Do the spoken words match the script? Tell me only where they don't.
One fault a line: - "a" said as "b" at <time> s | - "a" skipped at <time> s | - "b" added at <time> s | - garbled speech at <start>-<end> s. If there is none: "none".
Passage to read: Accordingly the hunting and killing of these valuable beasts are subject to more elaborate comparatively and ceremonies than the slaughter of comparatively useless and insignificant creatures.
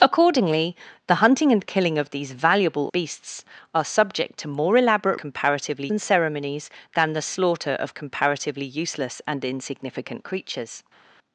none